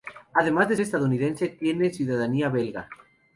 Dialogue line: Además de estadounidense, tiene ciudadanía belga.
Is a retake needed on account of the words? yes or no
no